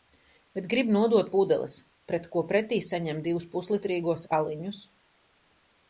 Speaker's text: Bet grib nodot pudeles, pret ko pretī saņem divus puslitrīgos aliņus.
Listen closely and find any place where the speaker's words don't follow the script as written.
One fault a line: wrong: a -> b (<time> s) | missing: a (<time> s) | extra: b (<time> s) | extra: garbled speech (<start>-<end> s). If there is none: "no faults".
no faults